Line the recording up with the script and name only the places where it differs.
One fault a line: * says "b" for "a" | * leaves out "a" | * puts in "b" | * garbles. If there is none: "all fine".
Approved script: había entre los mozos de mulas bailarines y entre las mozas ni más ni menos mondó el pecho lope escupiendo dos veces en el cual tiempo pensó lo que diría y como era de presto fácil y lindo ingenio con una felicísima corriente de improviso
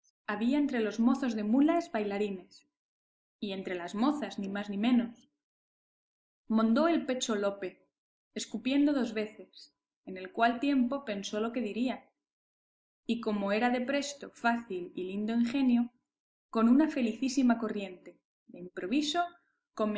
all fine